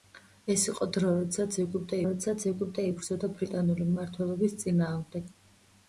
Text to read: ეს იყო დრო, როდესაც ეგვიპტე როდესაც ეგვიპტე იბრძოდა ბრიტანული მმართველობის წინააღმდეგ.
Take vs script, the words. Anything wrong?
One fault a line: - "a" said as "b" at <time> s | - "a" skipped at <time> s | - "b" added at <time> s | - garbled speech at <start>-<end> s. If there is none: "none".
none